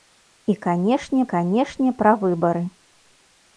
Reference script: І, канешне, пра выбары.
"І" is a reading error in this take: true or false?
false